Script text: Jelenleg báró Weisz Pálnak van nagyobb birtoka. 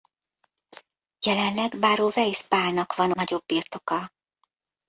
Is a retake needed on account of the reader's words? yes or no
no